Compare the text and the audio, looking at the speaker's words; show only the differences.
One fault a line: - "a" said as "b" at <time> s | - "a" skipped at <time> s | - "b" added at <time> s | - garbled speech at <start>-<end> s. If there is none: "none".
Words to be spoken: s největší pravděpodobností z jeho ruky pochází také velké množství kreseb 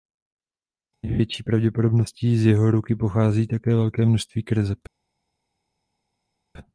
none